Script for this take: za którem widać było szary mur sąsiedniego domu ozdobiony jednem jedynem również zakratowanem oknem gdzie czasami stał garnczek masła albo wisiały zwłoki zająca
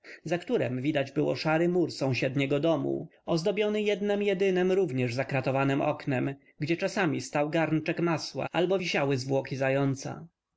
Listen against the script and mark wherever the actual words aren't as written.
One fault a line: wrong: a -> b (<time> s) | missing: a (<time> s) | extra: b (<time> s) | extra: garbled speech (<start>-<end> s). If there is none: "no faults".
no faults